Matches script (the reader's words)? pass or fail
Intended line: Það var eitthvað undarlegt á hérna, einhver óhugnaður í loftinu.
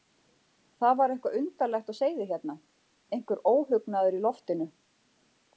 fail